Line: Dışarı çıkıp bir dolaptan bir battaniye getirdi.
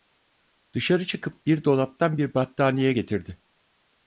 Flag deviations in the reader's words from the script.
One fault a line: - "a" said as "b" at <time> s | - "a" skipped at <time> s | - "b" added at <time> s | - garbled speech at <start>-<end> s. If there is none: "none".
none